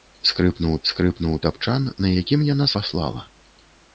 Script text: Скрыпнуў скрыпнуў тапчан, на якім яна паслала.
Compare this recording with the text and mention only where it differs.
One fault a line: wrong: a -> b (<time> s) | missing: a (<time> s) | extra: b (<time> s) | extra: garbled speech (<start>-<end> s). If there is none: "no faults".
no faults